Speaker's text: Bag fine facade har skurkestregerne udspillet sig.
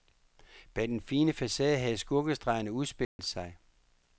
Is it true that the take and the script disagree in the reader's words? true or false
true